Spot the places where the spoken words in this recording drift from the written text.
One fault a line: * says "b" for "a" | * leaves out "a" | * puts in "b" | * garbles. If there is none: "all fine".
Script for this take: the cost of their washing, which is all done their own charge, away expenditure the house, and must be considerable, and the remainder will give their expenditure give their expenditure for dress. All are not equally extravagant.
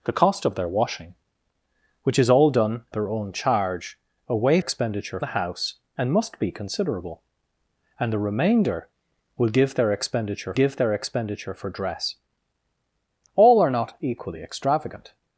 all fine